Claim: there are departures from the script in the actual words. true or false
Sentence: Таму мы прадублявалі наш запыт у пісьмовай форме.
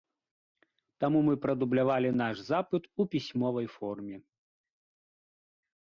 false